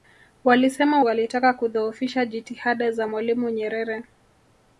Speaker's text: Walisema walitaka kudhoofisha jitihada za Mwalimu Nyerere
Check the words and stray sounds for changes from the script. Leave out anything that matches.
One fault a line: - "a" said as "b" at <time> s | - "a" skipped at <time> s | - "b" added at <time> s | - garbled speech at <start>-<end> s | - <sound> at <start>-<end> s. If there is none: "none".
none